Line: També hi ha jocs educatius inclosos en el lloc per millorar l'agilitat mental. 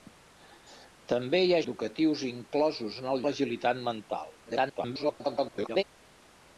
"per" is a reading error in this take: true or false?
true